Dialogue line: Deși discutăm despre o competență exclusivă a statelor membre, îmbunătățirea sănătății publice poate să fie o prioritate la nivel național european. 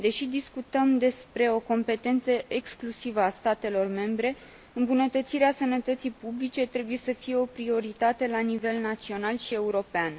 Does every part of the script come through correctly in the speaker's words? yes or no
no